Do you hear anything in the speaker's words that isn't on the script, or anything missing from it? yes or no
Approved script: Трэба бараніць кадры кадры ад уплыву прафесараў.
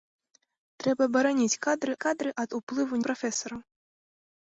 no